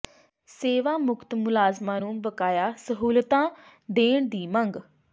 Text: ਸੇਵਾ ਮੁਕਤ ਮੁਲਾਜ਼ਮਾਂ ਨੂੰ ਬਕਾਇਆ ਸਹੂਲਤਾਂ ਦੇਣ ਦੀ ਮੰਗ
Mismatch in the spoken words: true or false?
false